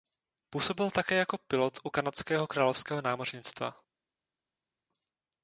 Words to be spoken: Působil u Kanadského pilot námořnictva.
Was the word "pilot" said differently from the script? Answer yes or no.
yes